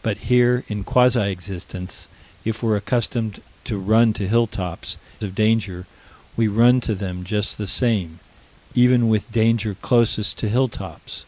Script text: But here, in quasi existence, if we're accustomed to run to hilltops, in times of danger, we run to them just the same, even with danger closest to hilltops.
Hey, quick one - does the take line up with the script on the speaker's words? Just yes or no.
no